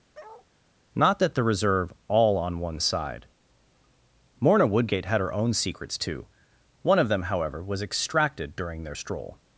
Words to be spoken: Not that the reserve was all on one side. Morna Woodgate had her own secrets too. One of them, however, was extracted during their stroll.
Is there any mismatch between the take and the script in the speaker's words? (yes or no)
yes